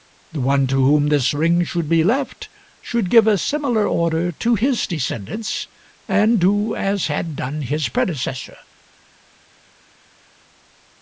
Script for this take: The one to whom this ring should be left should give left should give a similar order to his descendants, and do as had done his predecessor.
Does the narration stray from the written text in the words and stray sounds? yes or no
yes